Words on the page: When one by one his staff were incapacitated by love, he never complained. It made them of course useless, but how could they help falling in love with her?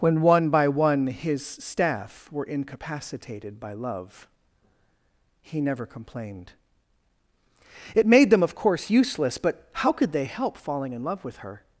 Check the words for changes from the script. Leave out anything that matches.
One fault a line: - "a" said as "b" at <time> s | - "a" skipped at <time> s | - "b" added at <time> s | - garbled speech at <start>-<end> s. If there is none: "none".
none